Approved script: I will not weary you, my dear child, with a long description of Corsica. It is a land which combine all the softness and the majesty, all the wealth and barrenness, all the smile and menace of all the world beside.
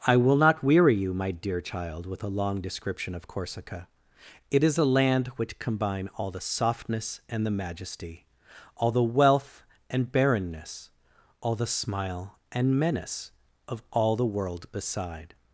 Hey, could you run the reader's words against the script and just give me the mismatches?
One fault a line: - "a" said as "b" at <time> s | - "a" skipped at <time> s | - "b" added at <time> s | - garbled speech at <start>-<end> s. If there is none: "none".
none